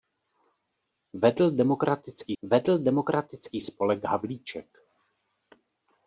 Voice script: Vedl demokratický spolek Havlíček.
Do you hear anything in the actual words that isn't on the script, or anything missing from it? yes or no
yes